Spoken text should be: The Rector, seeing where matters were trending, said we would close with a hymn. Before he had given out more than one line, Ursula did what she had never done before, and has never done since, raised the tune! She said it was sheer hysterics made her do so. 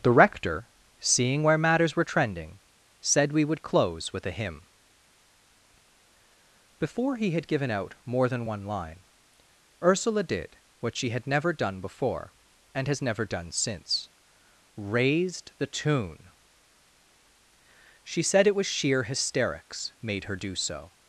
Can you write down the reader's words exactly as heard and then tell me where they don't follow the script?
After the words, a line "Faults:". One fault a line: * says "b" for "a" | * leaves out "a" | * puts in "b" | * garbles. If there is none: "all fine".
The Rector, seeing where matters were trending, said we would close with a hymn. Before he had given out more than one line, Ursula did what she had never done before, and has never done since, raised the tune! She said it was sheer hysterics made her do so.
Faults:
all fine